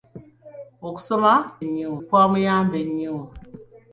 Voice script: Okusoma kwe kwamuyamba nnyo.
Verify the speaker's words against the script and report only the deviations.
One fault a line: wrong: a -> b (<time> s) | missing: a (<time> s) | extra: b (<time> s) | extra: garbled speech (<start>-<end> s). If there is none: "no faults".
wrong: kwe -> nnyo (1.6 s)